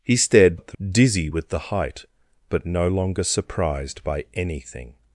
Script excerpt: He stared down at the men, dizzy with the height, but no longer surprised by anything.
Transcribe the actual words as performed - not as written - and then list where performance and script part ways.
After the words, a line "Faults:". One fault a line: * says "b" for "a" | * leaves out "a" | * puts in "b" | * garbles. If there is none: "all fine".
He stared at the dizzy with the height, but no longer surprised by anything.
Faults:
* leaves out "down"
* leaves out "men"